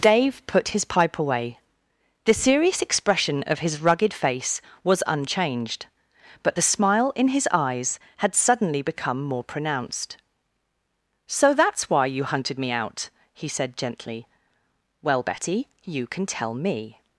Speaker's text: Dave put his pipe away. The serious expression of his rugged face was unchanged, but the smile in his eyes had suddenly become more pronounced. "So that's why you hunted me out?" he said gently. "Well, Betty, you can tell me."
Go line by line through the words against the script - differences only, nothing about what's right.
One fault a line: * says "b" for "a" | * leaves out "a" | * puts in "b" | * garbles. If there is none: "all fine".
all fine